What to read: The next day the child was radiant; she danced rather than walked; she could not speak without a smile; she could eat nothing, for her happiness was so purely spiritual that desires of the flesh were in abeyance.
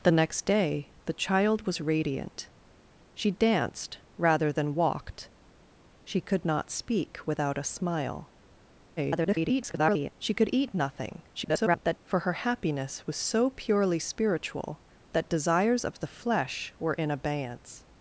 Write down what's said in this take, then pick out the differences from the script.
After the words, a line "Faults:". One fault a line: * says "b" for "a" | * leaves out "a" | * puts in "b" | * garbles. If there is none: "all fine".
The next day the child was radiant; she danced rather than walked; she could not speak without a smile; [garbled] she could eat nothing, [garbled] for her happiness was so purely spiritual that desires of the flesh were in abeyance.
Faults:
* garbles
* garbles